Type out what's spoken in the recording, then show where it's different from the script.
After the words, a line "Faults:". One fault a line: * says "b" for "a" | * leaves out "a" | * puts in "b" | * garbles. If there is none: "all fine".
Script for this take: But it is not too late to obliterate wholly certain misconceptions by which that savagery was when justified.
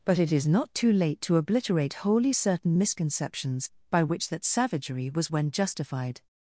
But it is not too late to obliterate wholly certain misconceptions by which that savagery was when justified.
Faults:
all fine